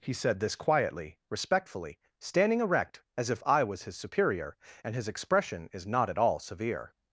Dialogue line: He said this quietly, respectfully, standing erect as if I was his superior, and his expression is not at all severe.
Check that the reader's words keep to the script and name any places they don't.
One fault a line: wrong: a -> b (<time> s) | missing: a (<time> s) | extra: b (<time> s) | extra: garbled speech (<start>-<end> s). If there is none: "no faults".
no faults